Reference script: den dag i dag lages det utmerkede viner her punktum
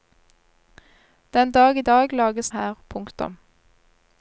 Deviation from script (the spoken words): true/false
true